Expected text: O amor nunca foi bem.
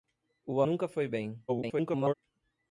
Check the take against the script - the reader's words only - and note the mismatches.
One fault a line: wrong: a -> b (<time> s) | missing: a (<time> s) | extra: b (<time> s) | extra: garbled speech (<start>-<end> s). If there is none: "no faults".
missing: amor (0.6 s)
extra: garbled speech (1.5-2.1 s)